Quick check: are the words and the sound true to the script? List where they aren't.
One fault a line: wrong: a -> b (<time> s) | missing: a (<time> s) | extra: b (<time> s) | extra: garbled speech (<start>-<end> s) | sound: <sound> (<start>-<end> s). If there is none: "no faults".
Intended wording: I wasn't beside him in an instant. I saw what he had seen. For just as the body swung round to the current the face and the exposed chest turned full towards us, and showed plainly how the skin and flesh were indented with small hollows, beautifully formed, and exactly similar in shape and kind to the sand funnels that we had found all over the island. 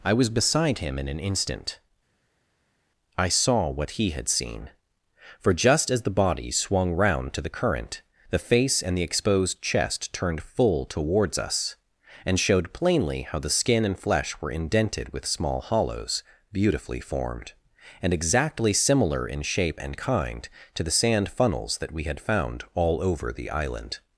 wrong: wasn't -> was (0.1 s)